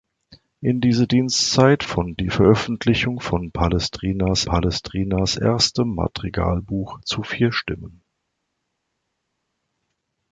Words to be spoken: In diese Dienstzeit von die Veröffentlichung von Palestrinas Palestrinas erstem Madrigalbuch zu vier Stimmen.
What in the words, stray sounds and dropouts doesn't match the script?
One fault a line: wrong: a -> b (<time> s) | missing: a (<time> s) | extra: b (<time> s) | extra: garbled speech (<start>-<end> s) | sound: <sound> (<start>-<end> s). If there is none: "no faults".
no faults